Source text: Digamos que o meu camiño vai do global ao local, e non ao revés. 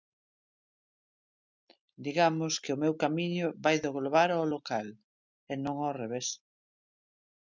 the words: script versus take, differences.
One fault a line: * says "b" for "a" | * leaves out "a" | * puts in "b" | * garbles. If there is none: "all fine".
all fine